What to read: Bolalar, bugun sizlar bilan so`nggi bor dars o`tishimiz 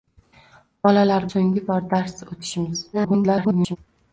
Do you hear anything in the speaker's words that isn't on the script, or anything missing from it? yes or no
yes